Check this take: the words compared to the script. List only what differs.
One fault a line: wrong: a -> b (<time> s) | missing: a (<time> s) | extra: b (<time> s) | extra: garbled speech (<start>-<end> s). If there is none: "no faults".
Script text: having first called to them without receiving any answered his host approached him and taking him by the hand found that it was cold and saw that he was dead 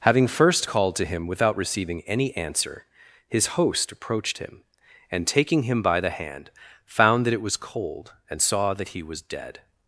wrong: them -> him (1.0 s)
wrong: answered -> answer (2.4 s)